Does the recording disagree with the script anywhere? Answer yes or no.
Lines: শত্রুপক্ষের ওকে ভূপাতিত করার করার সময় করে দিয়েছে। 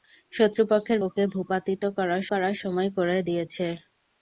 no